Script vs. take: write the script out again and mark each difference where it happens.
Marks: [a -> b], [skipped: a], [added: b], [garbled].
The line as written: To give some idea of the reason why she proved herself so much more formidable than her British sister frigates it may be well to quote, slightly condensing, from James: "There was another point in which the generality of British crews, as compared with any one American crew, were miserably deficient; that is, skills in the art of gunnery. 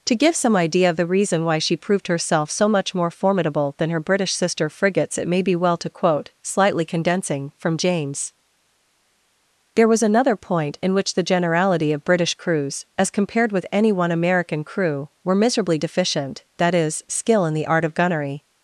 To give some idea of the reason why she proved herself so much more formidable than her British sister frigates it may be well to quote, slightly condensing, from James: "There was another point in which the generality of British crews, as compared with any one American crew, were miserably deficient; that is, [skills -> skill] in the art of gunnery.